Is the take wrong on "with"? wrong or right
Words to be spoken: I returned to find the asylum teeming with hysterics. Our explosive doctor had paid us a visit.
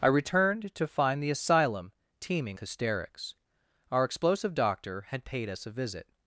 wrong